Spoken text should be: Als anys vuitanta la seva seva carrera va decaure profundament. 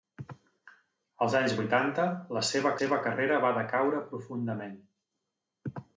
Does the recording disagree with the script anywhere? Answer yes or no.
no